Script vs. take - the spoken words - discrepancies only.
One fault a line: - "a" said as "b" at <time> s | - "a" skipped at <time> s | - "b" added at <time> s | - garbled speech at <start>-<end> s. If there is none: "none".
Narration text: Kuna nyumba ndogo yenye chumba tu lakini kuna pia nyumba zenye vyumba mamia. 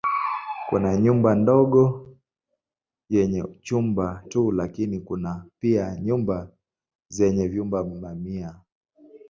none